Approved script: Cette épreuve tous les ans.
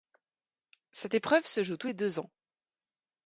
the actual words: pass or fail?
fail